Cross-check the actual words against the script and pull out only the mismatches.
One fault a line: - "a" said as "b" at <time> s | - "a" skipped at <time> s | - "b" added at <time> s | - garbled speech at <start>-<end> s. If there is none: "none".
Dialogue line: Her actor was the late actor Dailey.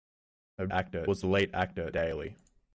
none